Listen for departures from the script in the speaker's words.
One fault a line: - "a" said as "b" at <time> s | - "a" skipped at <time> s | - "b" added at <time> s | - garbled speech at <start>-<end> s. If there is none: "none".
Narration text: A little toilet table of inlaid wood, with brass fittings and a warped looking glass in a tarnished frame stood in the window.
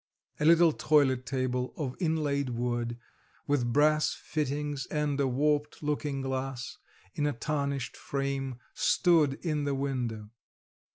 none